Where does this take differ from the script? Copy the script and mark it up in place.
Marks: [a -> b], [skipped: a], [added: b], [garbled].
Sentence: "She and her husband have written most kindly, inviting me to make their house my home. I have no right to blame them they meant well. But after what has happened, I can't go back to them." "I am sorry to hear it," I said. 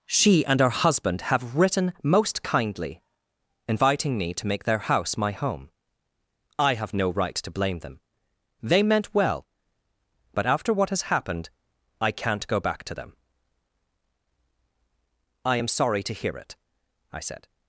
"She and her husband have written most kindly, inviting me to make their house my home. I have no right to blame them they meant well. But after what has happened, I can't go back to them." "I am sorry to hear it," I said.